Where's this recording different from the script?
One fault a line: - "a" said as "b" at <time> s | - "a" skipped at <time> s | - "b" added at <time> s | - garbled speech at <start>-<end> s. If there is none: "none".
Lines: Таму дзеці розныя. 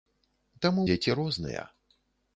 none